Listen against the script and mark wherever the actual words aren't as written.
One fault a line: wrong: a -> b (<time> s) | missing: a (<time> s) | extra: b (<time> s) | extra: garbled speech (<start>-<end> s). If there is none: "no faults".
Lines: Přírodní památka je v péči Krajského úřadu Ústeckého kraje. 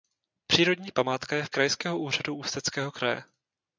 missing: péči (1.5 s)